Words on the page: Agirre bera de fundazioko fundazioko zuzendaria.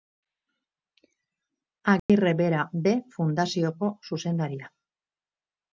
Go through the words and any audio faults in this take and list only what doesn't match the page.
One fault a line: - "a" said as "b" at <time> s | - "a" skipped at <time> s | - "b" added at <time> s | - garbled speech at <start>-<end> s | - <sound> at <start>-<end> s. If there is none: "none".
- dropout at 2.0-2.1 s
- "fundazioko" skipped at 3.9 s